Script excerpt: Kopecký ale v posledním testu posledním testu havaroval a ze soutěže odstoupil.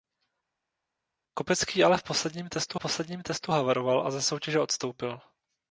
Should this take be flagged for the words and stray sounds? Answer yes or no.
no